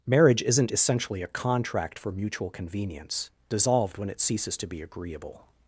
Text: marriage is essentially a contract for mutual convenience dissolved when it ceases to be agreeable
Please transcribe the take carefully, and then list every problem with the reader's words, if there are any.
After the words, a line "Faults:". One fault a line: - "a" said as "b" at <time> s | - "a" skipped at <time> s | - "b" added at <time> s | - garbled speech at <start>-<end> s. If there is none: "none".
marriage isn't essentially a contract for mutual convenience dissolved when it ceases to be agreeable
Faults:
- "is" said as "isn't" at 0.4 s